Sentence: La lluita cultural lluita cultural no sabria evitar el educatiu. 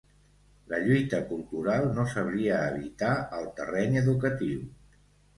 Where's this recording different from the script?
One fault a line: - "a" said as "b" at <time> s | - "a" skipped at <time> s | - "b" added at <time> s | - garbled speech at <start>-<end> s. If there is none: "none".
- "lluita cultural" skipped at 1.8 s
- "terreny" added at 3.6 s